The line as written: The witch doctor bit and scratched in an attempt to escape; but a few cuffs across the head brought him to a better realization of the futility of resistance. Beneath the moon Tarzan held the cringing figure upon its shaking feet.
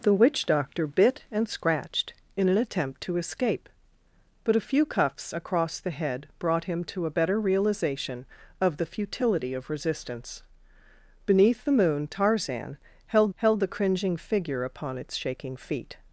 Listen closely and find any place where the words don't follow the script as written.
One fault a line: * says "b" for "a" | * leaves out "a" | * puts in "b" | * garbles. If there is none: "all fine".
* puts in "held"